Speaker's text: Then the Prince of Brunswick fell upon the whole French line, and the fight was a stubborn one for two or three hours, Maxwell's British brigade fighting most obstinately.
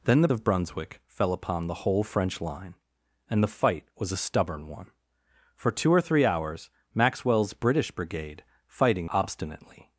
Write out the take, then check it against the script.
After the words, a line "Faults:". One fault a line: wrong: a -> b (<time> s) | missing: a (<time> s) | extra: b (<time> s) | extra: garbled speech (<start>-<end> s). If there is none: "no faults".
Then the Of Brunswick fell upon the whole French line, and the fight was a stubborn one for two or three hours, Maxwell's British brigade fighting obstinately.
Faults:
missing: Prince (0.3 s)
missing: most (9.1 s)